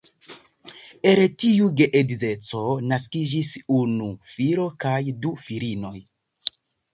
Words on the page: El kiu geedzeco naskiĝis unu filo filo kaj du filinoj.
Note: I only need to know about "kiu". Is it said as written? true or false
false